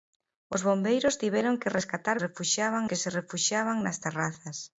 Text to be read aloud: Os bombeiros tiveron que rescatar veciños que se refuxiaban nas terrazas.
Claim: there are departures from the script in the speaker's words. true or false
true